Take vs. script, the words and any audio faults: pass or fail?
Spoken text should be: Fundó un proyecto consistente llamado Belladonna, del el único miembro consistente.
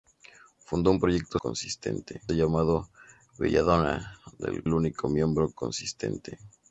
pass